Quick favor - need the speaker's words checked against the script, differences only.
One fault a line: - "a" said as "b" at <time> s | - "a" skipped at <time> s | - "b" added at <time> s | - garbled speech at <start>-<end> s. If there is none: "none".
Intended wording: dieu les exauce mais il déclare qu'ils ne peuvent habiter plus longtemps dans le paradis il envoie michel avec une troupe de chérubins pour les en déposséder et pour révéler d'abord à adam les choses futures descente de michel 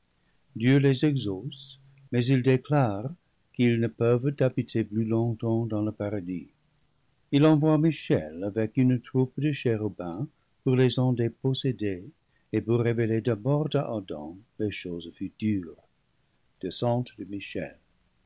none